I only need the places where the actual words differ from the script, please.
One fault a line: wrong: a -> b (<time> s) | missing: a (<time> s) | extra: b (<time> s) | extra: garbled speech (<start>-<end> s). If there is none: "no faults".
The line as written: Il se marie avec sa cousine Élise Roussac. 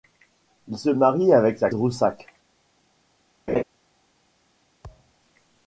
missing: cousine Élise (1.7 s)